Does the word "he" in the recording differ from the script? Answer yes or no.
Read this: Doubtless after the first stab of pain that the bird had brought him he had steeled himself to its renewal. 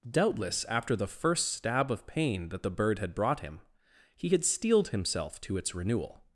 no